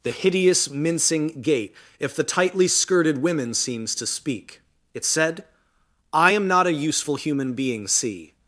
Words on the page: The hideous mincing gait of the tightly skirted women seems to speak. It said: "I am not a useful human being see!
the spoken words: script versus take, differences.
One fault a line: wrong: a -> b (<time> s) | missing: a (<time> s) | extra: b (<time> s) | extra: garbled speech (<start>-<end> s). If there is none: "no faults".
wrong: of -> if (2.0 s)